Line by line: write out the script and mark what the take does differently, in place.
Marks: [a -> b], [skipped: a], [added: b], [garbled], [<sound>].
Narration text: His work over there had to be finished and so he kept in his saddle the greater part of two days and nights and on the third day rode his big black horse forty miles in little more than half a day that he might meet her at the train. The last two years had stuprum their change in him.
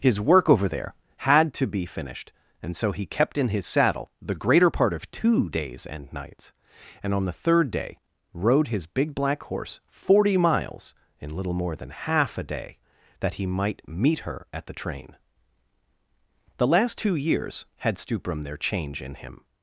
His work over there had to be finished and so he kept in his saddle the greater part of two days and nights and on the third day rode his big black horse forty miles in little more than half a day that he might meet her at the train. The last two years had stuprum their change in him.